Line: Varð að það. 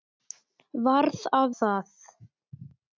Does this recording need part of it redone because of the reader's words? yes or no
no